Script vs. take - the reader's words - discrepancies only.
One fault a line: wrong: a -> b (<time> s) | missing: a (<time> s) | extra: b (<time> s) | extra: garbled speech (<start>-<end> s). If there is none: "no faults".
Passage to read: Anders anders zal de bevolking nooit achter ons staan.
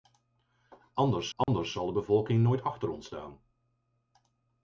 no faults